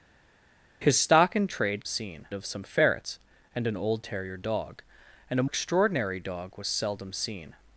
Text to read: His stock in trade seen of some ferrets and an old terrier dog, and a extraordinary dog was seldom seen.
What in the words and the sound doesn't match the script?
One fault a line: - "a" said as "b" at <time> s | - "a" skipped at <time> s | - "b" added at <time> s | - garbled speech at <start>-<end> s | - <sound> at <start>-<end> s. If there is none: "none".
none